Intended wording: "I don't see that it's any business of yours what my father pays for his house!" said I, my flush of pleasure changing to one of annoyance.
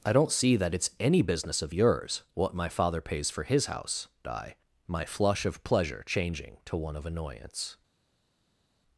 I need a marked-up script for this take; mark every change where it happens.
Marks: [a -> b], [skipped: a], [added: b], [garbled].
"I don't see that it's any business of yours what my father pays for his house!" [skipped: said] I, my flush of pleasure changing to one of annoyance.